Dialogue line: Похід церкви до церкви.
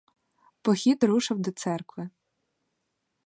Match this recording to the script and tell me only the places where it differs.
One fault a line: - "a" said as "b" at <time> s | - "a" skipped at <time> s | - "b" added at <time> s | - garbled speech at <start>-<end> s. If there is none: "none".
- "церкви" said as "рушив" at 1.0 s